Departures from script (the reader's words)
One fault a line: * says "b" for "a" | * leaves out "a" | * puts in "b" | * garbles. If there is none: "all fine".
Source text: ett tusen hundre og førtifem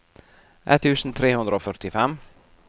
* puts in "tre"